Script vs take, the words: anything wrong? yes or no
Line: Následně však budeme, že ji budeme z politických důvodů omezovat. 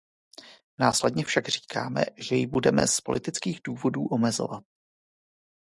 yes